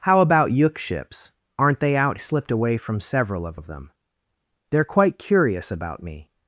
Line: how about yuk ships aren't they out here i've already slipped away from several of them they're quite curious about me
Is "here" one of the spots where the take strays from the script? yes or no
yes